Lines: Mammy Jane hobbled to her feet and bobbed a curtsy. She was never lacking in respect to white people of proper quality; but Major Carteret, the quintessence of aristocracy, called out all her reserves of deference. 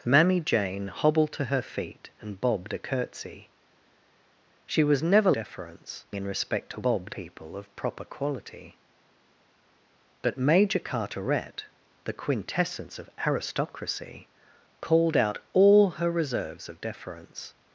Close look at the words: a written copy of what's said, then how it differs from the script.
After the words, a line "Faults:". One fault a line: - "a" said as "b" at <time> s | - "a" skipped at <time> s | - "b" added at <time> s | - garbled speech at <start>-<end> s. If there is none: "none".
Mammy Jane hobbled to her feet and bobbed a curtsy. She was never deference in respect to bobbed people of proper quality; but Major Carteret, the quintessence of aristocracy, called out all her reserves of deference.
Faults:
- "lacking" said as "deference" at 5.3 s
- "white" said as "bobbed" at 6.8 s